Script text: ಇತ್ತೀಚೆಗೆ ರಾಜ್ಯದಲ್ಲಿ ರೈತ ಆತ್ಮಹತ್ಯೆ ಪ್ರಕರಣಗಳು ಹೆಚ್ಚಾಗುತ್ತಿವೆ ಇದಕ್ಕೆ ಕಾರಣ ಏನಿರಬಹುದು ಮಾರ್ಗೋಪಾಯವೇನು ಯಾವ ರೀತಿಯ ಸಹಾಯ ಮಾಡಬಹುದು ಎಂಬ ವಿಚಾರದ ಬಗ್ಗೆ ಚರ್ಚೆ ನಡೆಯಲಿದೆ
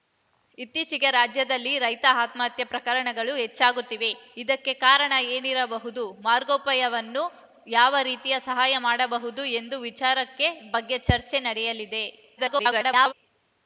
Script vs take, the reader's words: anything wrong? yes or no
yes